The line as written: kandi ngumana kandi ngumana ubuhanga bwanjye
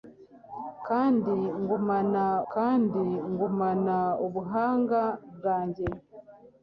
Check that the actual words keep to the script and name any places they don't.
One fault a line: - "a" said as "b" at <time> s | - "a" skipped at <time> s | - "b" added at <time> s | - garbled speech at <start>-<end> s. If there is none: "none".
none